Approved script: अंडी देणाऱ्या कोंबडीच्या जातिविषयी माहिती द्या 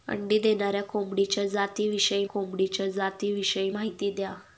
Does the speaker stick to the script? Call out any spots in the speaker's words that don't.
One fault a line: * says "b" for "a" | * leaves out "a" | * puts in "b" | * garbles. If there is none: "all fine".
* puts in "कोंबडीच्या जातिविषयी"